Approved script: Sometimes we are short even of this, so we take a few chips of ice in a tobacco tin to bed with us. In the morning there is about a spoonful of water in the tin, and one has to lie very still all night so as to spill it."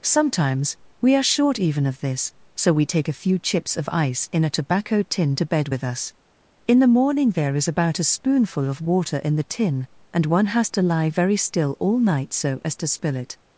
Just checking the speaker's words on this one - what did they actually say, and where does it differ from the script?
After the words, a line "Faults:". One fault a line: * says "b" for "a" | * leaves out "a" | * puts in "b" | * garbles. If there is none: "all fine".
Sometimes we are short even of this, so we take a few chips of ice in a tobacco tin to bed with us. In the morning there is about a spoonful of water in the tin, and one has to lie very still all night so as to spill it."
Faults:
all fine